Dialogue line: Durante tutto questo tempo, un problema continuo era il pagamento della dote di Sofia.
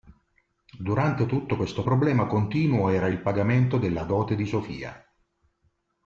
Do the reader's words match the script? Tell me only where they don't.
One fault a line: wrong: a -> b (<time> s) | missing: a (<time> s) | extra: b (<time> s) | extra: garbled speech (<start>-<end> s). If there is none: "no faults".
missing: tempo un (1.8 s)